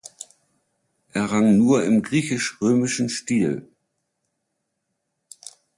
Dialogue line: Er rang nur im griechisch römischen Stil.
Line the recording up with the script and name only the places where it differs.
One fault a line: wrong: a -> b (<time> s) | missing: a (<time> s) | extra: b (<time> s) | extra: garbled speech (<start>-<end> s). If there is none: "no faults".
no faults